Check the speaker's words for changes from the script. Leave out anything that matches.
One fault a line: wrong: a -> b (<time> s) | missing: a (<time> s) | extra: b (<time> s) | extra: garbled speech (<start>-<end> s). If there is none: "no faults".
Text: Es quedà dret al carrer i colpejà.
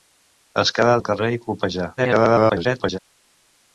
missing: dret (0.9 s)
extra: garbled speech (2.0-3.0 s)